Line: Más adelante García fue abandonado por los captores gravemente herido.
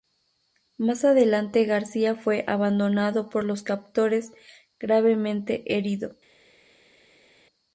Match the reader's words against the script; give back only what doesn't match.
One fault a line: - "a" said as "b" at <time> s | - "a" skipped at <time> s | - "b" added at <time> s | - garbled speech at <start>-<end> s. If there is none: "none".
none